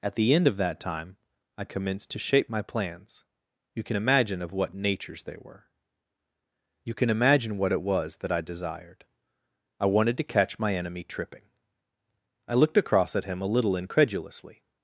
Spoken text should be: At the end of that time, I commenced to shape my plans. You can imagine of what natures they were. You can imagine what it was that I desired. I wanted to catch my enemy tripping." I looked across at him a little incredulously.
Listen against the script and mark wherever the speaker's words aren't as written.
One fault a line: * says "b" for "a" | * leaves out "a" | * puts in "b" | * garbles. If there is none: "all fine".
all fine